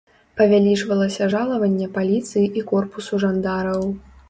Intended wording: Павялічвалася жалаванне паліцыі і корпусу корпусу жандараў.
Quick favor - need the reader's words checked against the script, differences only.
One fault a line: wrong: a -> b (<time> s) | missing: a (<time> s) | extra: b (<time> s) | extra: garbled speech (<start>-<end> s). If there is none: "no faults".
missing: корпусу (3.2 s)